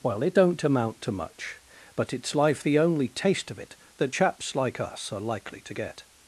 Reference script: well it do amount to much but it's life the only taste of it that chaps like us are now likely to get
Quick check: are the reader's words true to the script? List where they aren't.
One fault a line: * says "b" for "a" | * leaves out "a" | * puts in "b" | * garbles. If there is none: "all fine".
* says "don't" for "do"
* leaves out "now"